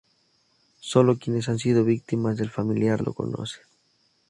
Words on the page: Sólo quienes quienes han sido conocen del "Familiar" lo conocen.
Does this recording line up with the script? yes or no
no